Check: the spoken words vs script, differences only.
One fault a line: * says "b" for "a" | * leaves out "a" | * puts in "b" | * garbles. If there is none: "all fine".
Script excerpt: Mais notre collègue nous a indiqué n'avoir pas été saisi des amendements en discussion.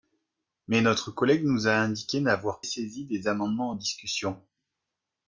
* leaves out "pas été"